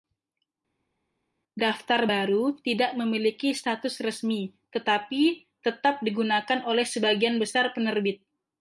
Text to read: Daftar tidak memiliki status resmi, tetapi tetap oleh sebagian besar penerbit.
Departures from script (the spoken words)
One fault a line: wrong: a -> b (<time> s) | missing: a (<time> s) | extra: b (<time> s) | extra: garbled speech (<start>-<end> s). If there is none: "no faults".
extra: baru (2.1 s)
extra: digunakan (6.1 s)